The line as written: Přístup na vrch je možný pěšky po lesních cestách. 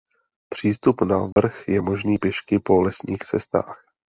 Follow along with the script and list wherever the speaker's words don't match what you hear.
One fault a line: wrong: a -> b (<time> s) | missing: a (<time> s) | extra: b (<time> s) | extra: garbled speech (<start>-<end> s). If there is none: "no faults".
no faults